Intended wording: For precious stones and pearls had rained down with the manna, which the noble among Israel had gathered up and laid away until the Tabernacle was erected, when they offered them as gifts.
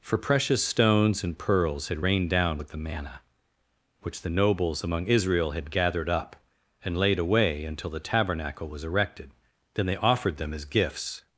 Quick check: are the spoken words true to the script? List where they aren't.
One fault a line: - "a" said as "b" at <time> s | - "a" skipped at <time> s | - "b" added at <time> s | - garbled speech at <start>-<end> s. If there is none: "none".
- "noble" said as "nobles" at 4.3 s
- "when" said as "then" at 9.7 s